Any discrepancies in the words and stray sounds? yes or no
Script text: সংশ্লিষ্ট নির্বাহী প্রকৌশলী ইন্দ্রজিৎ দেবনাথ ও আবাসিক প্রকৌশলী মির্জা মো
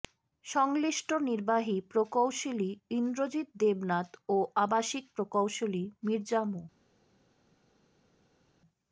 no